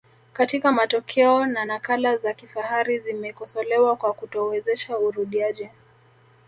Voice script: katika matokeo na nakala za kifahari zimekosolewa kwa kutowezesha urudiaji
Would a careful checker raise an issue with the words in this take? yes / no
no